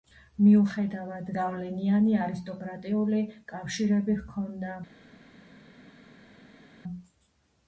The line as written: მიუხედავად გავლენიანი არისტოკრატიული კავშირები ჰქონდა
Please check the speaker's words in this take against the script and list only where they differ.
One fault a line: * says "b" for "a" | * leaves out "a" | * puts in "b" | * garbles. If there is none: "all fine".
all fine